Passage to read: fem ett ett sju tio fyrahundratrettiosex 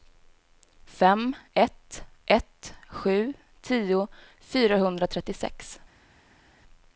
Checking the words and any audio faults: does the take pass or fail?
pass